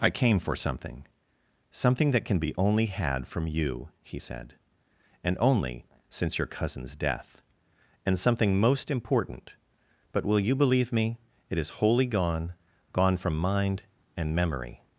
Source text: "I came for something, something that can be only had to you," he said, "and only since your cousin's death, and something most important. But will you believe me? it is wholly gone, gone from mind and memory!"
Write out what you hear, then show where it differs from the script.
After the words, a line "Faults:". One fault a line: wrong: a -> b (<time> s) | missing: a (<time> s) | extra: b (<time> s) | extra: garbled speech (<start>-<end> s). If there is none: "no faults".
"I came for something, something that can be only had from you," he said, "and only since your cousin's death, and something most important. But will you believe me? it is wholly gone, gone from mind and memory!"
Faults:
wrong: to -> from (3.3 s)